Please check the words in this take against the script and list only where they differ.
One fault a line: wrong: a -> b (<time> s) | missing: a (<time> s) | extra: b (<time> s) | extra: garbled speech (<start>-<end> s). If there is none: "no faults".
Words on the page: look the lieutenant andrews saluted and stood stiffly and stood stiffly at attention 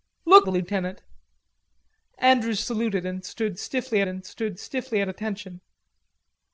no faults